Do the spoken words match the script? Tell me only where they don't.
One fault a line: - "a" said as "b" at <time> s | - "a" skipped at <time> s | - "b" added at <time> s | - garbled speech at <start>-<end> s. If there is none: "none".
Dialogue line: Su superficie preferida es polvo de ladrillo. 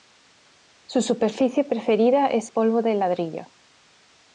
none